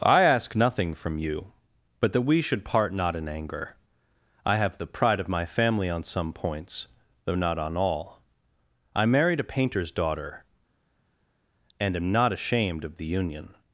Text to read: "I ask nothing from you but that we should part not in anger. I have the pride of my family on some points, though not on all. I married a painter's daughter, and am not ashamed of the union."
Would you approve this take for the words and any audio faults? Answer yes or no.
yes